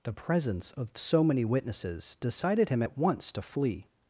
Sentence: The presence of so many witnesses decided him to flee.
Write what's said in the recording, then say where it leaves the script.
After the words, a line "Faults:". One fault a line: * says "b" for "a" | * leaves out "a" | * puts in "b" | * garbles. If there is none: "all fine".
The presence of so many witnesses decided him at once to flee.
Faults:
* puts in "at once"